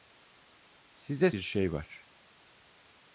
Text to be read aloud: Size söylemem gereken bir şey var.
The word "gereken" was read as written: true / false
false